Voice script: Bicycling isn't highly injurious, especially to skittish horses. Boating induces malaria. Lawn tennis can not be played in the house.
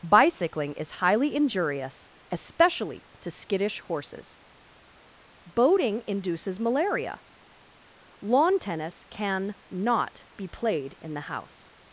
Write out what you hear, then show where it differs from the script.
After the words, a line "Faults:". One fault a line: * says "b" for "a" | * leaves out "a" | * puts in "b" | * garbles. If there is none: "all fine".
Bicycling is highly injurious, especially to skittish horses. Boating induces malaria. Lawn tennis can not be played in the house.
Faults:
* says "is" for "isn't"